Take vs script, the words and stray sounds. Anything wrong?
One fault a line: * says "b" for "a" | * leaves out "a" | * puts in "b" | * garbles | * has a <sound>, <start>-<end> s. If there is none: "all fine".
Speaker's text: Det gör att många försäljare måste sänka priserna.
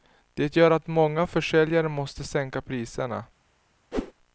* has a whoosh, 3.9-4.1 s